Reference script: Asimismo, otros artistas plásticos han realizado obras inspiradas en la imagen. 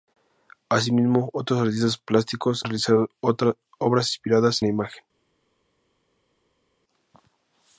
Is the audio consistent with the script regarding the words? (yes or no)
no